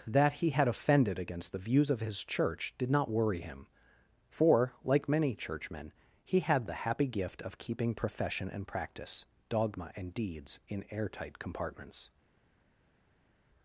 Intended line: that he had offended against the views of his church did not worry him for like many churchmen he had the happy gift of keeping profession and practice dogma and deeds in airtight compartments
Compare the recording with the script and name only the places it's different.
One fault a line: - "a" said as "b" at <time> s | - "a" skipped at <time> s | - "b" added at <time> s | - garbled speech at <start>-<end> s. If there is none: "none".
none